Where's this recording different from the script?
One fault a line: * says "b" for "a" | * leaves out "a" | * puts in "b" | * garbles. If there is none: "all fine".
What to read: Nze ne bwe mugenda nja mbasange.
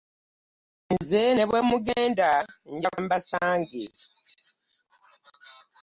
all fine